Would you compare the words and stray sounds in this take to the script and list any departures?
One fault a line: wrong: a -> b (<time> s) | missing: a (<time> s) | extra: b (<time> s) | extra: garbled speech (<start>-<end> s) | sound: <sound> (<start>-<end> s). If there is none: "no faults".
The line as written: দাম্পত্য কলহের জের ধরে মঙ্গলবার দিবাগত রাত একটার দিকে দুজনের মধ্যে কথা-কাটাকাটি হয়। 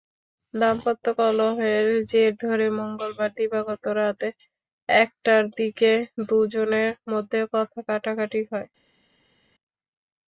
no faults